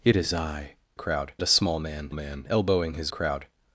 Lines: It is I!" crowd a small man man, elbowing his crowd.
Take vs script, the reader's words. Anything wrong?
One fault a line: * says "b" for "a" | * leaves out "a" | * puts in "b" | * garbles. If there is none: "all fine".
all fine